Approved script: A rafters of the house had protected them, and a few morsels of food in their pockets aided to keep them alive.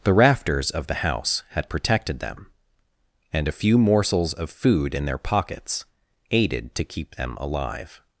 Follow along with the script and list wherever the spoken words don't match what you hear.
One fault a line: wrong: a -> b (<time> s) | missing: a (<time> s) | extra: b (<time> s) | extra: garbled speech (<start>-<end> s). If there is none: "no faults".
wrong: A -> The (0.0 s)